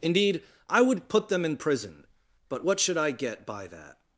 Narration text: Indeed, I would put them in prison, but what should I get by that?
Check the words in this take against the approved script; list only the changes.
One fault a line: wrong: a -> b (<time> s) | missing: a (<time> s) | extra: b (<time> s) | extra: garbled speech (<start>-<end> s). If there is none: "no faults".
no faults